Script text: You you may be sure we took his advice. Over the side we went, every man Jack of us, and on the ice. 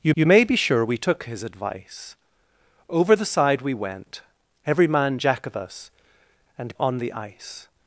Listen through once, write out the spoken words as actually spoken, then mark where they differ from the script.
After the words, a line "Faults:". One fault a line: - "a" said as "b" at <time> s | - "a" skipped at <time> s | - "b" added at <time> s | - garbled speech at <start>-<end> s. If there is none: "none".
You you may be sure we took his advice. Over the side we went, every man Jack of us, and on the ice.
Faults:
none